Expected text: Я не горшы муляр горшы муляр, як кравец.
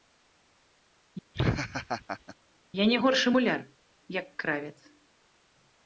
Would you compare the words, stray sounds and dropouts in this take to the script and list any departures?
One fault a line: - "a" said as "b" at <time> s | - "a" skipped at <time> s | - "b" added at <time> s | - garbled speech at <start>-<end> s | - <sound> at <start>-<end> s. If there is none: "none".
- laugh at 1.3-2.4 s
- "горшы муляр" skipped at 3.6 s